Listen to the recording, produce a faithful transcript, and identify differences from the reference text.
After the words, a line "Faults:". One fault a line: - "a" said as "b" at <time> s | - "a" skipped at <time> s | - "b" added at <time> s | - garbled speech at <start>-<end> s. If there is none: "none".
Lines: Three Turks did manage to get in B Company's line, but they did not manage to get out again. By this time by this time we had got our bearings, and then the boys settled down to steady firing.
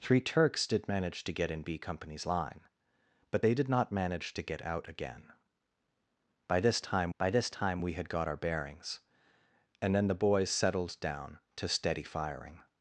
Three Turks did manage to get in B Company's line, but they did not manage to get out again. By this time by this time we had got our bearings, and then the boys settled down to steady firing.
Faults:
none